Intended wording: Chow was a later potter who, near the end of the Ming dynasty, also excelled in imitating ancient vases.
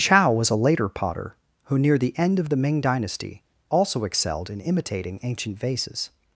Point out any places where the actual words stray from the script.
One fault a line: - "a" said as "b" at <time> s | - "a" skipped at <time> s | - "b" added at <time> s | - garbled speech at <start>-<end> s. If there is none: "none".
none